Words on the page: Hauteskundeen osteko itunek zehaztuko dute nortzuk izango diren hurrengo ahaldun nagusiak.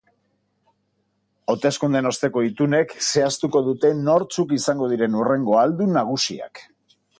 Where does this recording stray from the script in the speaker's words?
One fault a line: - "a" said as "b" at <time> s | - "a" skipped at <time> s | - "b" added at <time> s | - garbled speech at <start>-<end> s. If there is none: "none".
none